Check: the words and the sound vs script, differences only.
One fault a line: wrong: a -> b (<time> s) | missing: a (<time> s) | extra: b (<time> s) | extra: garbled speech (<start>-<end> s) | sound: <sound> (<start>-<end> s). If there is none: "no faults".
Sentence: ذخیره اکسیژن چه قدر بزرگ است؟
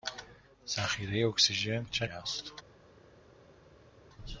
missing: قدر بزرگ (2.1 s)